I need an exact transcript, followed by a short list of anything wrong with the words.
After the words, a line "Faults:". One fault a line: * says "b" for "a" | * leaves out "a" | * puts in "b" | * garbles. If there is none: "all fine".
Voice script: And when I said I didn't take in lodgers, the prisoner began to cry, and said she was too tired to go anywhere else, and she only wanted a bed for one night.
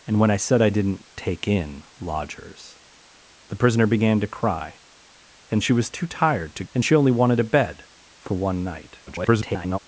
And when I said I didn't take in lodgers, the prisoner began to cry, and she was too tired to and she only wanted a bed for one night. [garbled]
Faults:
* leaves out "said"
* leaves out "go anywhere else"
* garbles